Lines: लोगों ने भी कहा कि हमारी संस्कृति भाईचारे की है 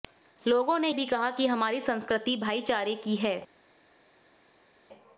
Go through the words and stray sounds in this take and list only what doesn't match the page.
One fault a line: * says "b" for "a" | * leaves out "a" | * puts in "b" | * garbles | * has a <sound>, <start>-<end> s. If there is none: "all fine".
all fine